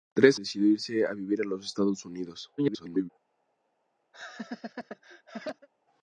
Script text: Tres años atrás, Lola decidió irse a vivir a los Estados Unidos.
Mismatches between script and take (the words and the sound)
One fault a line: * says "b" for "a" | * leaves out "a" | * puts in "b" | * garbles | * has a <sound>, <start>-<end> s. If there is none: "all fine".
* leaves out "años atrás Lola"
* garbles
* has a laugh, 4.1-5.7 s